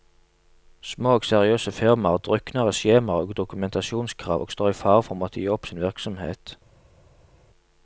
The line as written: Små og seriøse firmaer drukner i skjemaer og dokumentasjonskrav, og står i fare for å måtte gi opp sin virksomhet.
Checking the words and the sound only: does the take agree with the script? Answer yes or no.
yes